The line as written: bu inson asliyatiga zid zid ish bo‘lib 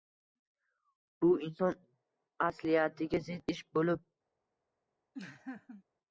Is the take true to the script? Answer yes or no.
no